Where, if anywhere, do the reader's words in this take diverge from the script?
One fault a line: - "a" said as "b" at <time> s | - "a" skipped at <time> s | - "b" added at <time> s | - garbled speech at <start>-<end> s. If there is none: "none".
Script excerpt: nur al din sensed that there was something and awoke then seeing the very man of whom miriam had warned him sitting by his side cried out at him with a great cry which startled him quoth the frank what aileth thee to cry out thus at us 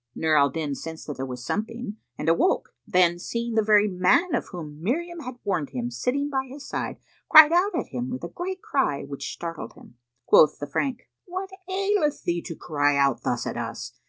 none